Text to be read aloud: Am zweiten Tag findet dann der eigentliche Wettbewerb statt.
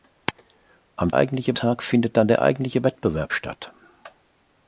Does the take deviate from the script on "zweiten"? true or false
true